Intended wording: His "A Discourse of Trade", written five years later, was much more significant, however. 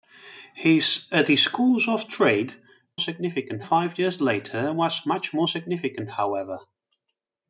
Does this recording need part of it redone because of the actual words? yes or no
yes